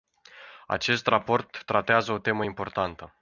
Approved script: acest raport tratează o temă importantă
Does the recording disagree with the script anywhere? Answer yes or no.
no